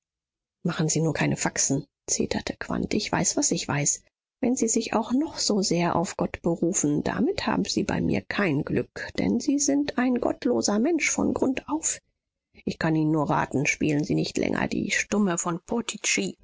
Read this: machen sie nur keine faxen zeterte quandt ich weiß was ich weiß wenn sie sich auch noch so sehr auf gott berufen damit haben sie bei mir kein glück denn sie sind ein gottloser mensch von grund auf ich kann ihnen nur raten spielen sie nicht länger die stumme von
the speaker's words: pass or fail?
pass